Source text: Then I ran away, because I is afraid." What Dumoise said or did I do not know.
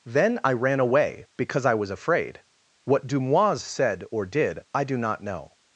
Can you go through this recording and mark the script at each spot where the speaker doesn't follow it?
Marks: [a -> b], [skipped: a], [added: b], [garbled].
Then I ran away, because I [is -> was] afraid." What Dumoise said or did I do not know.